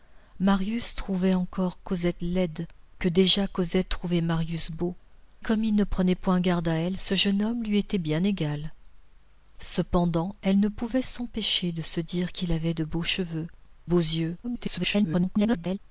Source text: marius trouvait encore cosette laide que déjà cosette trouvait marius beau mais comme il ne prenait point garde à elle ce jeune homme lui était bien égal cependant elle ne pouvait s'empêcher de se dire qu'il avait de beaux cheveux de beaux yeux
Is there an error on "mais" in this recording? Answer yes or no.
yes